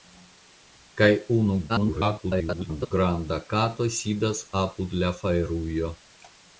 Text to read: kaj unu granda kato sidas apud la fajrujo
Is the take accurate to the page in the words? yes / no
no